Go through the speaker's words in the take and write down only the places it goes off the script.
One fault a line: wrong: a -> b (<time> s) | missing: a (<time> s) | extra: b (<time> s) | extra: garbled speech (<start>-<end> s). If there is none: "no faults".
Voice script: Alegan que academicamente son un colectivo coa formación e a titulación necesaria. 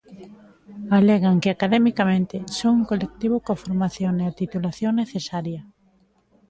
no faults